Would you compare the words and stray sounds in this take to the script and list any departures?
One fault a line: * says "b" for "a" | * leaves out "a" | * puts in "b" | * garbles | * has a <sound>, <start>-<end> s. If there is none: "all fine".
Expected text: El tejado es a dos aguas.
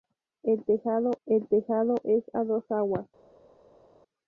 * puts in "el tejado"